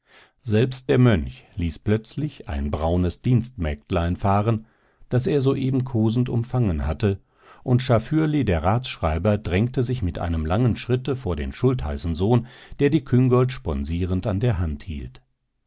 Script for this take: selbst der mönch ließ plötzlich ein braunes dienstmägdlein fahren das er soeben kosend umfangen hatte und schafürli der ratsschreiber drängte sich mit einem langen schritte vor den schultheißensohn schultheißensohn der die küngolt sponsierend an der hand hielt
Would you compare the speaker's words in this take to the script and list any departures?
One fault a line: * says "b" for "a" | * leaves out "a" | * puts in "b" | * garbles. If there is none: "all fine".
* leaves out "schultheißensohn"